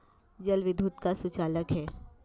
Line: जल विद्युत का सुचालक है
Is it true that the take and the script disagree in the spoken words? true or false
false